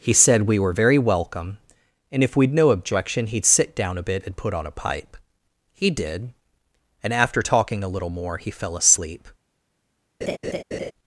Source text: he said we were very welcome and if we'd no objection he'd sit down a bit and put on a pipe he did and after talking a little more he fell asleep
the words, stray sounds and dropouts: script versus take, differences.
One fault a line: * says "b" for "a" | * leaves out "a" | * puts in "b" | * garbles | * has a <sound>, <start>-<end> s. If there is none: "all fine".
* has a laugh, 10.2-10.9 s